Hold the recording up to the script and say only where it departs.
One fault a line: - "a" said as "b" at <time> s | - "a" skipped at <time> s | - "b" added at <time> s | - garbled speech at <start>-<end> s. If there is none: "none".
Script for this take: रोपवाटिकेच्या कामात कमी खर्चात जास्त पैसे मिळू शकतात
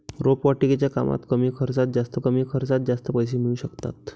- "कमी खर्चात जास्त" added at 2.2 s